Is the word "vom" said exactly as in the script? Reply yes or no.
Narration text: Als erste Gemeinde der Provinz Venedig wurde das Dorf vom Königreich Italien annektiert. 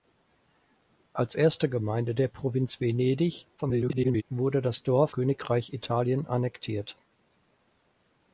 no